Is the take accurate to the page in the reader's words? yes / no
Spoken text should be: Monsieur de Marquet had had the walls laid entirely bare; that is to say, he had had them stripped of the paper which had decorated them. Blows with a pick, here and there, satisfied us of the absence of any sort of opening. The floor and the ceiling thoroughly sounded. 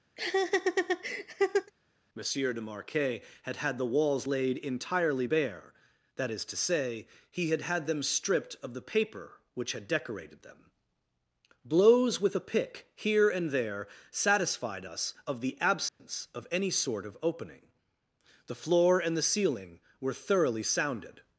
no